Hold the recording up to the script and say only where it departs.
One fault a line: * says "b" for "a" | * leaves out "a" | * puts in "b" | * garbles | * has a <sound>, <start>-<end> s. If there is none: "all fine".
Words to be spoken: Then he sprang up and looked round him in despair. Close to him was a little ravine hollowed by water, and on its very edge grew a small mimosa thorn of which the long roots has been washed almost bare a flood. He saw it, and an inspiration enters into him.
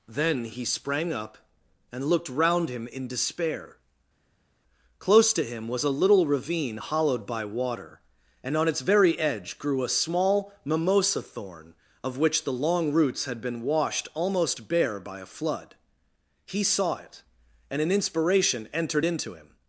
* says "had" for "has"
* puts in "by"
* says "entered" for "enters"